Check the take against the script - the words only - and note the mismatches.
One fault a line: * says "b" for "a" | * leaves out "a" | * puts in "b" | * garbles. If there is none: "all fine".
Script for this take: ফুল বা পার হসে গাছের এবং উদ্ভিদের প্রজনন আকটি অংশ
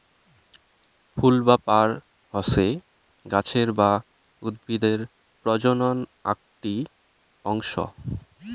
* says "বা" for "এবং"